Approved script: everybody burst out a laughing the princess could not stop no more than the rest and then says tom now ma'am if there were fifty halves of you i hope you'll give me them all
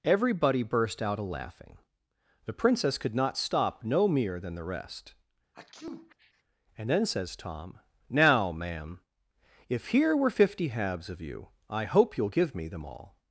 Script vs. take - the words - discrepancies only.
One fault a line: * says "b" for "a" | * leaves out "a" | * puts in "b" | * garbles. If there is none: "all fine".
* says "mere" for "more"
* says "here" for "there"